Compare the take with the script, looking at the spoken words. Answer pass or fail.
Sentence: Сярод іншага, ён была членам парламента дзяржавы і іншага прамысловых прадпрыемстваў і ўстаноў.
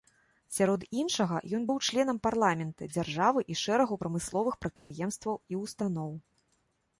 fail